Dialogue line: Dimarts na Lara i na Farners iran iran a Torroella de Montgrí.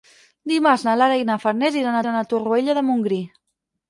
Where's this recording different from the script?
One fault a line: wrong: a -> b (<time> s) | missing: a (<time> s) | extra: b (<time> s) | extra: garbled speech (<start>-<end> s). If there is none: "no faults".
no faults